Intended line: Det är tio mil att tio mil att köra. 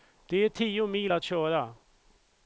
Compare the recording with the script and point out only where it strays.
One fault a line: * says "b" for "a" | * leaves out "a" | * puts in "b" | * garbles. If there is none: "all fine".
* leaves out "tio mil att"